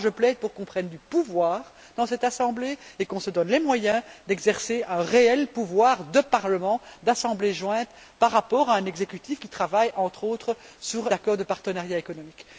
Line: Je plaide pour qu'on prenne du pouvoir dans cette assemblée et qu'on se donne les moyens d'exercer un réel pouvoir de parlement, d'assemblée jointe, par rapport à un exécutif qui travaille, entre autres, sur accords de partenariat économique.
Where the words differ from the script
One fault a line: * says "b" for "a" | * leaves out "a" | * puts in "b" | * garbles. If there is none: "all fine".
all fine